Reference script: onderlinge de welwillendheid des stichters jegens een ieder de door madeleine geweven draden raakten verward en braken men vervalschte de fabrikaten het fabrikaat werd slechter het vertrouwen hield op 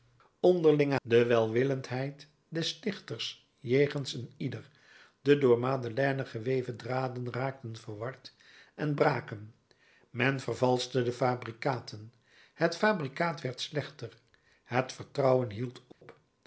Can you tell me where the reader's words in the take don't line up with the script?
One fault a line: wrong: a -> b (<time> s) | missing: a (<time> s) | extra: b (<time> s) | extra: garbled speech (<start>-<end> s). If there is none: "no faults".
no faults